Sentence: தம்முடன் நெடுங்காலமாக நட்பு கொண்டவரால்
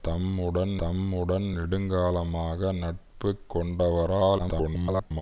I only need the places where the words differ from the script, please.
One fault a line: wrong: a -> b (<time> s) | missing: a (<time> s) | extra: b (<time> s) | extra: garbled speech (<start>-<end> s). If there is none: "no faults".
extra: தம்முடன் (0.8 s)
extra: garbled speech (4.4-5.2 s)